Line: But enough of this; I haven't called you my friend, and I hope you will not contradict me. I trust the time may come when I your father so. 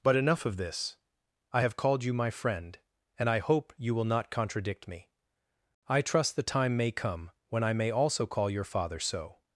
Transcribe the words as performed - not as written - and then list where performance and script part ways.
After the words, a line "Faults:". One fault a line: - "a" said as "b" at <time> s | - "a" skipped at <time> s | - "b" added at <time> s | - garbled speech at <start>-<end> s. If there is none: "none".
But enough of this; I have called you my friend, and I hope you will not contradict me. I trust the time may come when I may also call your father so.
Faults:
- "haven't" said as "have" at 1.6 s
- "may also call" added at 7.7 s